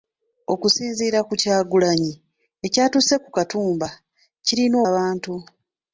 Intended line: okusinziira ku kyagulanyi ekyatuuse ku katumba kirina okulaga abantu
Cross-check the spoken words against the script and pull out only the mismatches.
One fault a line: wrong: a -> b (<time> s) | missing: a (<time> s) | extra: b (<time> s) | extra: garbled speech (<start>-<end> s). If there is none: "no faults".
missing: okulaga (4.8 s)